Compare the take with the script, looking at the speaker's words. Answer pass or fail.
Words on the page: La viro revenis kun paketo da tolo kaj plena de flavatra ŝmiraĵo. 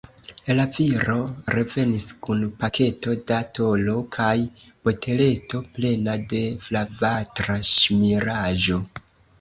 fail